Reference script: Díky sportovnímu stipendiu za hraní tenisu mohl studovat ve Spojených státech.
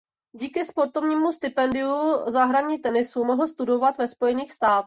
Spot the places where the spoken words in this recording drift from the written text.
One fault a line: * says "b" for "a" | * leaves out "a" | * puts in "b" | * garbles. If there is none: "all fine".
all fine